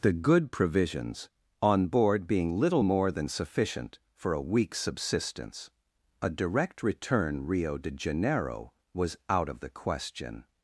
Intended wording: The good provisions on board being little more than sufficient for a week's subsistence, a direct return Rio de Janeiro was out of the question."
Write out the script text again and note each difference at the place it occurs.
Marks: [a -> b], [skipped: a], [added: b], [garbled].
The good provisions on board being little more than sufficient for a week's subsistence, a direct return Rio de Janeiro was out of the question."